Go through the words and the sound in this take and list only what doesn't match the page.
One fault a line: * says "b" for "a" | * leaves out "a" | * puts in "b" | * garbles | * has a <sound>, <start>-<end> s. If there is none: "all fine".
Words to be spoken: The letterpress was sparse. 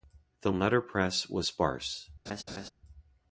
* has a laugh, 2.3-2.7 s